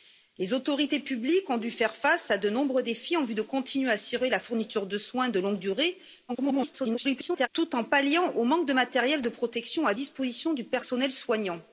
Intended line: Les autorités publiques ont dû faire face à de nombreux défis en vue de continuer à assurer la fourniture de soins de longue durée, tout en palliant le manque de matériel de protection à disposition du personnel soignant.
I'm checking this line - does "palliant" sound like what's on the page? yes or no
yes